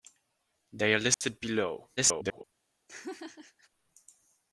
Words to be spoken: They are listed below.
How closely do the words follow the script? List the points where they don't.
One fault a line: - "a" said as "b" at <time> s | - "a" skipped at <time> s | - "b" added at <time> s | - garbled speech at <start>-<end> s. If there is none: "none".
- garbled speech at 2.0-2.4 s